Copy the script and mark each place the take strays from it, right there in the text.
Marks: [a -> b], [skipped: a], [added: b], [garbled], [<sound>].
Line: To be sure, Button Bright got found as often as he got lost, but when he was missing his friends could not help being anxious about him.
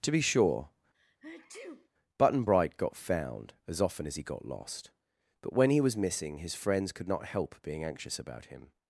To be sure, [sneeze] Button Bright got found as often as he got lost, but when he was missing his friends could not help being anxious about him.